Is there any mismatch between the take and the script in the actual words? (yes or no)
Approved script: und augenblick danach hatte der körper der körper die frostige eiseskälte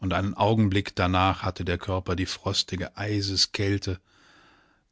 yes